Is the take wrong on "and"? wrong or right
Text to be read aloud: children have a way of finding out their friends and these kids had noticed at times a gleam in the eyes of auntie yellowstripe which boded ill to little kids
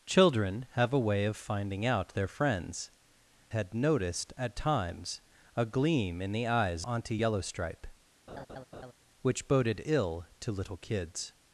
wrong